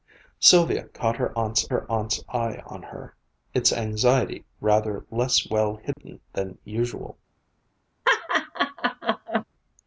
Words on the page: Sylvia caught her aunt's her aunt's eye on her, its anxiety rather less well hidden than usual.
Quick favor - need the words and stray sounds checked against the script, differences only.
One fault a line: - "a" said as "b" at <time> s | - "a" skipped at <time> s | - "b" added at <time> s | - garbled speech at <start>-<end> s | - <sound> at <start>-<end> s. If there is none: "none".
- dropout at 5.9-6.0 s
- laugh at 8.0-9.4 s